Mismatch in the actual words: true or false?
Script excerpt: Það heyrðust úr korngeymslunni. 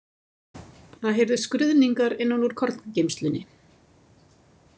true